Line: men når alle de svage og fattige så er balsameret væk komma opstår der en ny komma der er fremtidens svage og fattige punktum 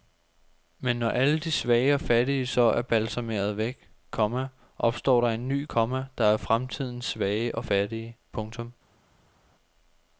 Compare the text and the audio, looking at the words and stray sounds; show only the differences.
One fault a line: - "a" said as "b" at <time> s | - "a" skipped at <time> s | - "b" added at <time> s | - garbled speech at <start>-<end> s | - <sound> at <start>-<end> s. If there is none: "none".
none